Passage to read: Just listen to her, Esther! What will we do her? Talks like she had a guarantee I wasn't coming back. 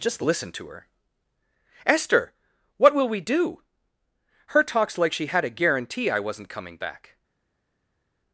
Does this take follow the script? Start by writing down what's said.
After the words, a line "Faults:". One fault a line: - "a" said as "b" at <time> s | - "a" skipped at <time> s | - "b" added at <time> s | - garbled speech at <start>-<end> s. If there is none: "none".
Just listen to her, Esther! What will we do her? Talks like she had a guarantee I wasn't coming back.
Faults:
none